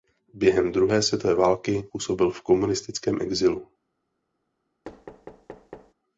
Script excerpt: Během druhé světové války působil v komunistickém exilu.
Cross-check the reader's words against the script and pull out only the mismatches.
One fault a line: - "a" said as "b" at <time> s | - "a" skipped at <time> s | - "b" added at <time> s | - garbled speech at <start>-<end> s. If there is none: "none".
none